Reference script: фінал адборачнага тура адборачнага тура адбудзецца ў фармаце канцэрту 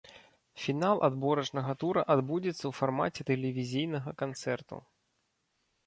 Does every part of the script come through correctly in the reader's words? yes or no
no